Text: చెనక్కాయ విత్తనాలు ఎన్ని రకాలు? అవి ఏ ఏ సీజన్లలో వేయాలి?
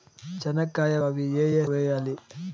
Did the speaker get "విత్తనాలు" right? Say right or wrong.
wrong